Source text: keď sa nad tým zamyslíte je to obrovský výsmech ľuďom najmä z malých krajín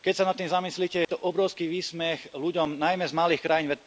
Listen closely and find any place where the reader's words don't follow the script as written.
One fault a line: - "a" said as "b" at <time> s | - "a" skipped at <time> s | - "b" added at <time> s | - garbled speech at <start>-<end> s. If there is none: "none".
none